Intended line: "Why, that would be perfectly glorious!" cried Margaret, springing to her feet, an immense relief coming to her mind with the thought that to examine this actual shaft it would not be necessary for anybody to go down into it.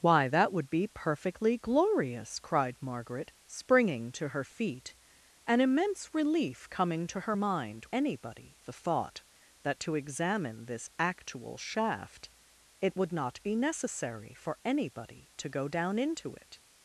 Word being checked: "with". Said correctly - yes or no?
no